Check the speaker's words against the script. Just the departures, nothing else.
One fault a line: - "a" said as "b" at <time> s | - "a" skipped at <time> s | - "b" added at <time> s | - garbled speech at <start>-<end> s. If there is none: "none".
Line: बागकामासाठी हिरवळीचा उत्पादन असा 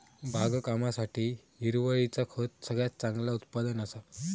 - "खत सगळ्यात चांगला" added at 2.3 s